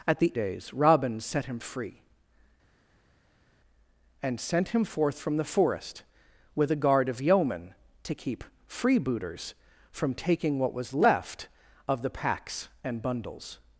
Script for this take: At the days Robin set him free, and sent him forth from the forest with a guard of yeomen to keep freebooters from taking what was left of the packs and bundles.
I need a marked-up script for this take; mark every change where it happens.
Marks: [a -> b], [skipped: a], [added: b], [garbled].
At the days Robin set him free, and sent him forth from the forest with a guard of yeomen to keep freebooters from taking what was left of the packs and bundles.